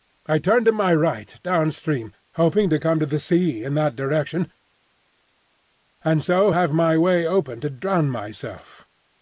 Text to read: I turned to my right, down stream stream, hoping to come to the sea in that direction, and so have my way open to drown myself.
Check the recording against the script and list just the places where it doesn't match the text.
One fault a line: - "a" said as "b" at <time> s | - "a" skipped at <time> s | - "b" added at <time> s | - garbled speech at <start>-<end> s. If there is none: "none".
- "stream" skipped at 2.1 s